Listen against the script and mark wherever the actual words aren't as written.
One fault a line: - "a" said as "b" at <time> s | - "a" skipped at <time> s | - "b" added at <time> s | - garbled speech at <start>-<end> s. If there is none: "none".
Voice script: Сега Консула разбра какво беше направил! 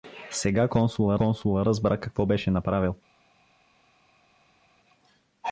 - "Консула" added at 1.1 s